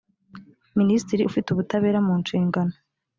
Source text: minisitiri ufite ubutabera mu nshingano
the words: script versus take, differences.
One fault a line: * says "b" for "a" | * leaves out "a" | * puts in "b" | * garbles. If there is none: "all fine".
all fine